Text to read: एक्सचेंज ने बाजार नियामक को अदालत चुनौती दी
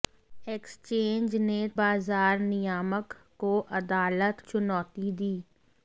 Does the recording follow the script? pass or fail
pass